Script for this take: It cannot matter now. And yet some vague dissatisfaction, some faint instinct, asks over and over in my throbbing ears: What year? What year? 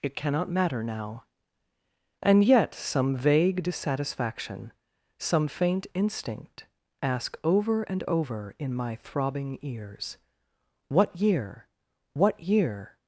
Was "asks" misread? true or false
true